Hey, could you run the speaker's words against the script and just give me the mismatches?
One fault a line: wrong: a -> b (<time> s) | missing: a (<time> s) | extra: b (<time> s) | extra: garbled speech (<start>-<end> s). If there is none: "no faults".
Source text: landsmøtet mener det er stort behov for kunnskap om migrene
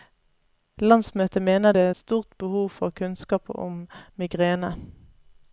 no faults